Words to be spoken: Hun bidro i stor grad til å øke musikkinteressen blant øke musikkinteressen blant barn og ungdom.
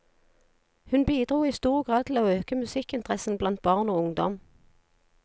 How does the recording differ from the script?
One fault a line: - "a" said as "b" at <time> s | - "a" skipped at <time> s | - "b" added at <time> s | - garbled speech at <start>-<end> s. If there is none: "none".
- "øke musikkinteressen blant" skipped at 3.6 s